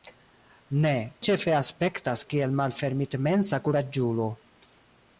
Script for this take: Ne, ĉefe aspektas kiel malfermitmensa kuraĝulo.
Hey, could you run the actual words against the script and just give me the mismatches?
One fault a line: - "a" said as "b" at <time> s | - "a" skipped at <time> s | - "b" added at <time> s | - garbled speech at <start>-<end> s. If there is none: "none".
none